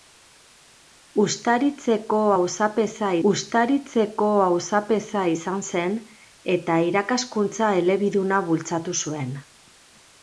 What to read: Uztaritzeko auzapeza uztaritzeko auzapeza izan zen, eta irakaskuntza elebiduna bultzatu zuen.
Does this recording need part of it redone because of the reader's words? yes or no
no